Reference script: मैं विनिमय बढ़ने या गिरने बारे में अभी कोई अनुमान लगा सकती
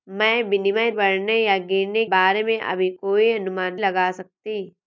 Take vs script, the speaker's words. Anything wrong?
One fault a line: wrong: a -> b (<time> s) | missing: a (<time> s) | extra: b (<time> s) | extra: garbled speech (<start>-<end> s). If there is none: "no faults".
no faults